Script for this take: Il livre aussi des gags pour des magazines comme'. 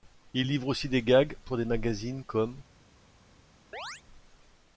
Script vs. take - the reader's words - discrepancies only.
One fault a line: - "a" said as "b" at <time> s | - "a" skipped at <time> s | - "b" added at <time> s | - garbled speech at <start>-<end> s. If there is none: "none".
none